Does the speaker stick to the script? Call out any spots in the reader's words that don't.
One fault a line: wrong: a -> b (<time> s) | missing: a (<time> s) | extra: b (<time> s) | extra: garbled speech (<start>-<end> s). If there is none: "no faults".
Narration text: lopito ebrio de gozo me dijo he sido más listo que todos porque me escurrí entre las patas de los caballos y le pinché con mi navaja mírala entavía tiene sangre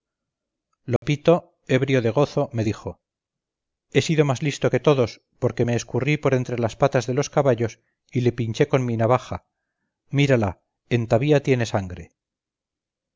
extra: por (6.2 s)